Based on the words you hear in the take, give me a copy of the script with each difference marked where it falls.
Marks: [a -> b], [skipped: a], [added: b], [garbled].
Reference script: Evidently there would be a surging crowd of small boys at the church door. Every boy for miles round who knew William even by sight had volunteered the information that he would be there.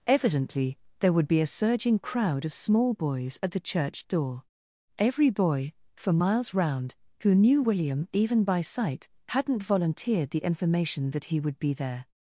Evidently there would be a surging crowd of small boys at the church door. Every boy for miles round who knew William even by sight [had -> hadn't] volunteered the information that he would be there.